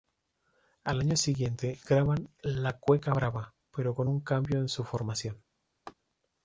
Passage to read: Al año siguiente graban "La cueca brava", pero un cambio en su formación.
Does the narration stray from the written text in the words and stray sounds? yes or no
yes